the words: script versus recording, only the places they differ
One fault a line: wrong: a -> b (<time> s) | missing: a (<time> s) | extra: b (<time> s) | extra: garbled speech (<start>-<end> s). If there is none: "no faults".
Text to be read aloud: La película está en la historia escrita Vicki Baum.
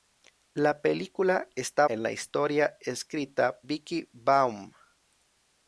no faults